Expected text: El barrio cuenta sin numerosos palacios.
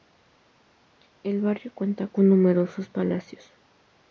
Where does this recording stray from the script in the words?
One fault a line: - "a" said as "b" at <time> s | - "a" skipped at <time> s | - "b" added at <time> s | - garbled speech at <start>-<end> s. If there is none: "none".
- "sin" said as "con" at 2.1 s